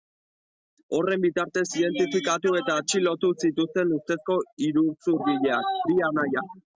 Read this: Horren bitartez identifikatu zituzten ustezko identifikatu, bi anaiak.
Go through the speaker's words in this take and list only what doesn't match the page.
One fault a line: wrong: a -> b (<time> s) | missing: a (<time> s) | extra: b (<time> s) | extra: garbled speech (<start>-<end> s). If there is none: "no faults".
extra: eta atxilotu (2.6 s)
wrong: identifikatu -> iruzurgileak (4.7 s)